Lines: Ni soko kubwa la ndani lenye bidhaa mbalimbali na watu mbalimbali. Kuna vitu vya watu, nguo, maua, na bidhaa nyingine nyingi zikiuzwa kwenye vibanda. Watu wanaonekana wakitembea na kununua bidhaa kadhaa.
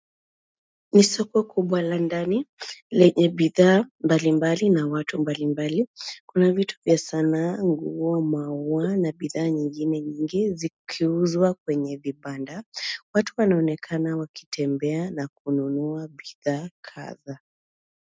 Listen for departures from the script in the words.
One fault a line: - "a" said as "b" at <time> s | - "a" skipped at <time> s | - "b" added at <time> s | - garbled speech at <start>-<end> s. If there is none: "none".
- "watu" said as "sanaa" at 7.0 s